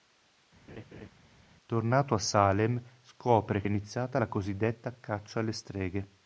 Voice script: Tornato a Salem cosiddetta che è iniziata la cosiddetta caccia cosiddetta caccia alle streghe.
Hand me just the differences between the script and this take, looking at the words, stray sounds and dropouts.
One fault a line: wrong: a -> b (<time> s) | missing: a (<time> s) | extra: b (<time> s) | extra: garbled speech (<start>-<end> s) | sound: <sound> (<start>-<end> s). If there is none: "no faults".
sound: laugh (0.7-1.1 s)
wrong: cosiddetta -> scopre (3.0 s)
missing: cosiddetta caccia (5.4 s)